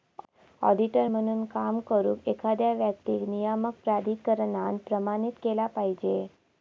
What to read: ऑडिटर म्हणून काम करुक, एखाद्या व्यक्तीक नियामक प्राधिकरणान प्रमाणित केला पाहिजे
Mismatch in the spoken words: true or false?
false